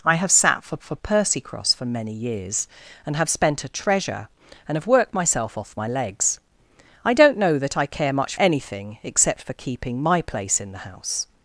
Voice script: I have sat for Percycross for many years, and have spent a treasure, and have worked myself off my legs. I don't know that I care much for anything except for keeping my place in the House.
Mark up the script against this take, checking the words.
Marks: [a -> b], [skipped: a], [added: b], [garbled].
I have sat for [added: for] Percycross for many years, and have spent a treasure, and have worked myself off my legs. I don't know that I care much [skipped: for] anything except for keeping my place in the House.